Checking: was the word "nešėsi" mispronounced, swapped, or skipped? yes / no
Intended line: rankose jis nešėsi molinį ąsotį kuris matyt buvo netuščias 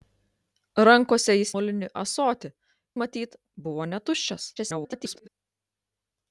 yes